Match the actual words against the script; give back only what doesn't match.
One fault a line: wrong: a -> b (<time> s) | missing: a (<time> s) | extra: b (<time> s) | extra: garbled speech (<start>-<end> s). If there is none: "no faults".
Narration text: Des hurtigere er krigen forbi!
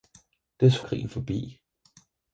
missing: hurtigere (0.8 s)